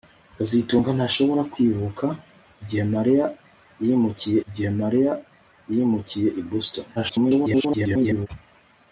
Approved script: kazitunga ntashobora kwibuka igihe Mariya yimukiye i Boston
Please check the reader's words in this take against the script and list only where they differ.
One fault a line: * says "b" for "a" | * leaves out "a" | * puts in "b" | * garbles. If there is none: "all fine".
* puts in "igihe Mariya yimukiye"
* garbles